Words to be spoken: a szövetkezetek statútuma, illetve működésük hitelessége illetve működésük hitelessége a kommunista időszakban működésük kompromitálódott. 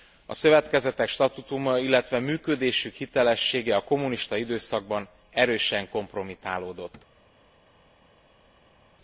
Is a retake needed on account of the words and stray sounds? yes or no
yes